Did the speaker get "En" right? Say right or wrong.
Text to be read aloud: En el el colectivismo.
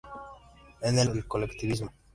right